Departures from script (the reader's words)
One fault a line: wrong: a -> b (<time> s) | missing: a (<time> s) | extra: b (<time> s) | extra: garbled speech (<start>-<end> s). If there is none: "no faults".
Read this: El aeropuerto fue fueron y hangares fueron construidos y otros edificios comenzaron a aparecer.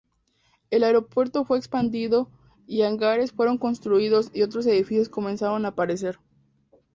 wrong: fueron -> expandido (1.6 s)